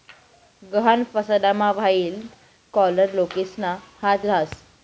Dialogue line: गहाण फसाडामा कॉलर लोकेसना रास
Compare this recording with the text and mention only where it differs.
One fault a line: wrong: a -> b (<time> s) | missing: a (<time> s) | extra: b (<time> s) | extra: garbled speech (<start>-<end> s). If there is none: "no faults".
extra: व्हाईट (1.7 s)
extra: हात (4.0 s)